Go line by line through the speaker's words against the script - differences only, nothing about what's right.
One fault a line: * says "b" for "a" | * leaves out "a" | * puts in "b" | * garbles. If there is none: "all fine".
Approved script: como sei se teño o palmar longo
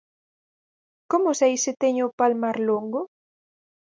all fine